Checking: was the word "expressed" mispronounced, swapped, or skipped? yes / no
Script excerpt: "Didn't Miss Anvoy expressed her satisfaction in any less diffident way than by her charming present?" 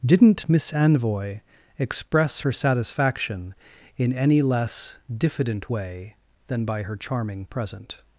yes